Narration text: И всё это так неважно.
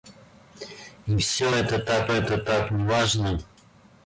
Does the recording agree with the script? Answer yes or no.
no